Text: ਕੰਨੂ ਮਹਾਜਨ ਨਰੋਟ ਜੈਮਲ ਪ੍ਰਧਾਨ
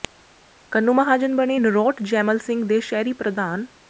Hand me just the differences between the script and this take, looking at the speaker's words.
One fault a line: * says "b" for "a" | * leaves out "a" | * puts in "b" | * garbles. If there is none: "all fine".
* puts in "ਬਣੇ"
* puts in "ਸਿੰਘ ਦੇ ਸ਼ਹਿਰੀ"